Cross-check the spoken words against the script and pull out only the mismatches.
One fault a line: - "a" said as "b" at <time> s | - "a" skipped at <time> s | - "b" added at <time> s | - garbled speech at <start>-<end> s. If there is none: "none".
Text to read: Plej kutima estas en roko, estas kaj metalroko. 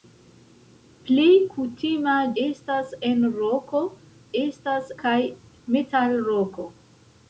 none